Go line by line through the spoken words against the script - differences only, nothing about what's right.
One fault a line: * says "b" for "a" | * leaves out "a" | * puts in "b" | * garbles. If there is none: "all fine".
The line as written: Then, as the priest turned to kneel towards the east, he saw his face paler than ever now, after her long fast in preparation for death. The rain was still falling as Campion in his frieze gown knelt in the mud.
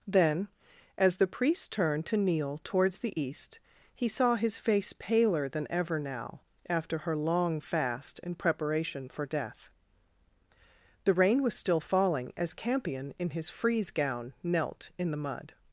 all fine